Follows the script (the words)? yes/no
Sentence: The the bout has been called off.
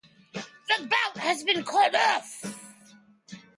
no